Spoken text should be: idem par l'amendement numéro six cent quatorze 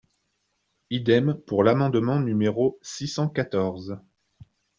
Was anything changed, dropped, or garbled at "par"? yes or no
yes